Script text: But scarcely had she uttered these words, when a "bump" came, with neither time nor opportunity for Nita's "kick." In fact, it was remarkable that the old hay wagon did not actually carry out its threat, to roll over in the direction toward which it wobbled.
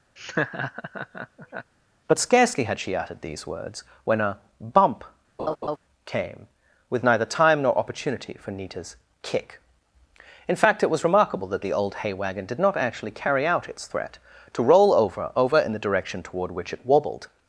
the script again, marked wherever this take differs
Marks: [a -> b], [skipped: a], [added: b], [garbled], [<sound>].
[laugh] But scarcely had she uttered these words, when a "bump" [laugh] came, with neither time nor opportunity for Nita's "kick." In fact, it was remarkable that the old hay wagon did not actually carry out its threat, to roll over [added: over] in the direction toward which it wobbled.